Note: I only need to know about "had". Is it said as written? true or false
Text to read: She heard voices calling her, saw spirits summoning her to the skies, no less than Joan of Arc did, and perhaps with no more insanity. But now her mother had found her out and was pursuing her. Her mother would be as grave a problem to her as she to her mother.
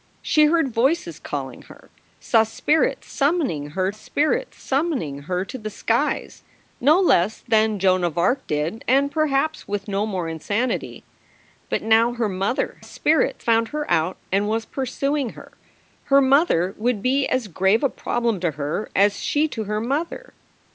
false